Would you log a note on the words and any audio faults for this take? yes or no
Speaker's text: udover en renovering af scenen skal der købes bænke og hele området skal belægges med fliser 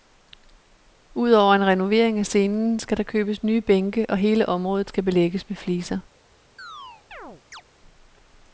yes